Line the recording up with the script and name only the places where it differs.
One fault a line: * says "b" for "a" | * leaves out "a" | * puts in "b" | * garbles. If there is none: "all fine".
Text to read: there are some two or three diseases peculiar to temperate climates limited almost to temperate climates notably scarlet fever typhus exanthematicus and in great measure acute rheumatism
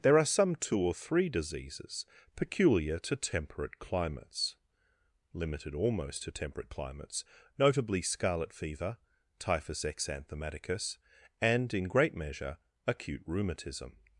all fine